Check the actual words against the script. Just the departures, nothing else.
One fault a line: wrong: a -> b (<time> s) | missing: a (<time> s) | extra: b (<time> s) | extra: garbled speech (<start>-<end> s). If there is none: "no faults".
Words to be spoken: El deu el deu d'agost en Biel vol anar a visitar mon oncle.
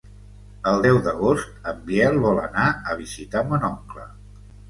missing: el deu (1.0 s)